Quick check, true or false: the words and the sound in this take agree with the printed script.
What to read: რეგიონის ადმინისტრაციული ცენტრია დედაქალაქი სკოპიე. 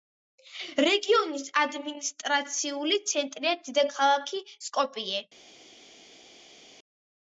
true